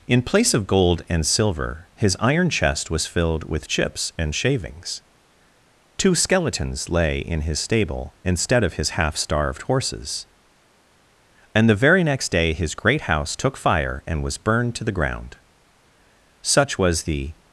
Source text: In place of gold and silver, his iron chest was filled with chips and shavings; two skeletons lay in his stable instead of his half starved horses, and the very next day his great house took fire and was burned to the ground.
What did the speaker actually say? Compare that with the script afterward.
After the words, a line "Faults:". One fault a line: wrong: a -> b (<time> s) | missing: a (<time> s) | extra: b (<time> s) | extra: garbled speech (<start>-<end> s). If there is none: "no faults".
In place of gold and silver, his iron chest was filled with chips and shavings; two skeletons lay in his stable instead of his half starved horses, and the very next day his great house took fire and was burned to the ground. Such was the
Faults:
extra: Such was the (16.4 s)